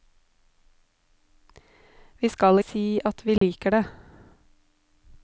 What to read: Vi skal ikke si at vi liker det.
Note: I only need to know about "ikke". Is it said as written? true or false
false